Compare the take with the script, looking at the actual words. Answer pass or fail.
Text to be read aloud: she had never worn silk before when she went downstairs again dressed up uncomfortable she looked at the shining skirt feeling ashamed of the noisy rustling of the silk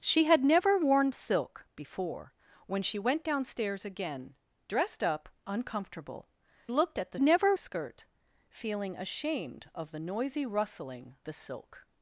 fail